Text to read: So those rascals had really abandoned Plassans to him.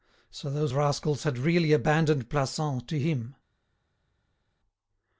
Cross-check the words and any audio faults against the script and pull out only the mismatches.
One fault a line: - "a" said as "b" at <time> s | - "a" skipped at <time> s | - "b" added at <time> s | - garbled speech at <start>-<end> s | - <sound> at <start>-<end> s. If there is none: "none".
none